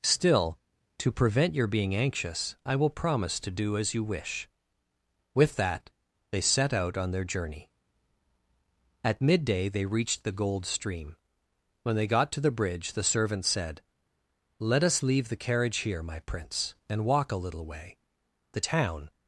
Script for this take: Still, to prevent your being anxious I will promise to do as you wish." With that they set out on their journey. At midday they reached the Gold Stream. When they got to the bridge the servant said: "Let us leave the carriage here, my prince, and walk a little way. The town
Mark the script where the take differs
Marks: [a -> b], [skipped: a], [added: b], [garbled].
Still, to prevent your being anxious I will promise to do as you wish." With that they set out on their journey. At midday they reached the Gold Stream. When they got to the bridge the servant said: "Let us leave the carriage here, my prince, and walk a little way. The town